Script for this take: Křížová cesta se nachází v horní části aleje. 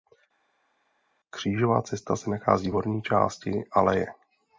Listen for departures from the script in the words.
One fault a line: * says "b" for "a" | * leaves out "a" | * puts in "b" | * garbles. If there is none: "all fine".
all fine